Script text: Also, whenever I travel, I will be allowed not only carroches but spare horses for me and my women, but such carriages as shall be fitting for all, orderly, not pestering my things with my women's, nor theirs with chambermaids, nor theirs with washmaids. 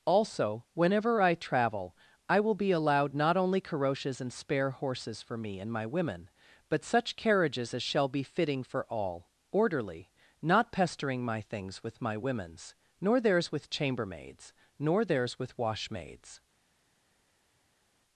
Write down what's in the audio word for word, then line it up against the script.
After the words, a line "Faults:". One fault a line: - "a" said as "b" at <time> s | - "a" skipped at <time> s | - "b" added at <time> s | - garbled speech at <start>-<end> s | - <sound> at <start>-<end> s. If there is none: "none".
Also, whenever I travel, I will be allowed not only carroches and spare horses for me and my women, but such carriages as shall be fitting for all, orderly, not pestering my things with my women's, nor theirs with chambermaids, nor theirs with washmaids.
Faults:
- "but" said as "and" at 4.2 s